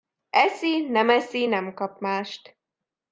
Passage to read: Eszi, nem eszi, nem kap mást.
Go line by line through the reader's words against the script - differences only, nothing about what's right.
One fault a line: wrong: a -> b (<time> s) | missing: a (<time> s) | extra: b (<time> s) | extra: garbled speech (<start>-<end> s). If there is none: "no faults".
no faults